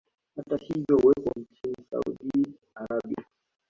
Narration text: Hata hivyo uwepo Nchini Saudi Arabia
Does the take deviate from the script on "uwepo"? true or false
false